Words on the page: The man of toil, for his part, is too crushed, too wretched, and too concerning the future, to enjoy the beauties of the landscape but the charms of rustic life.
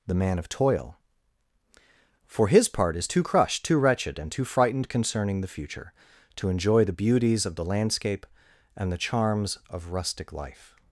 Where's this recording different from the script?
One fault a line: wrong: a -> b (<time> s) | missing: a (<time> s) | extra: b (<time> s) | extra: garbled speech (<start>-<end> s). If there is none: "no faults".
extra: frightened (4.4 s)
wrong: but -> and (8.8 s)